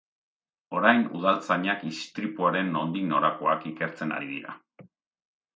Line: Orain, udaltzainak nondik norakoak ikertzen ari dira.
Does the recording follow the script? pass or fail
fail